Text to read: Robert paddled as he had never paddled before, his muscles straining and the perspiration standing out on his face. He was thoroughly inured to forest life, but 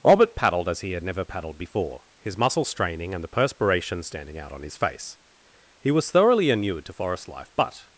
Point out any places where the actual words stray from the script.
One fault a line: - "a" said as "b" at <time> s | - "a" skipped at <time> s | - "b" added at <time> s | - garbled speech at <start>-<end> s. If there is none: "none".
none